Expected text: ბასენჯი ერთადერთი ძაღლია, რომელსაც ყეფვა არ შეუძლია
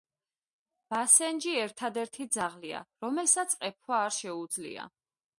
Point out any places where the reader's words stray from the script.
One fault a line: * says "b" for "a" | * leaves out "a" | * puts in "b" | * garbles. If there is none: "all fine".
all fine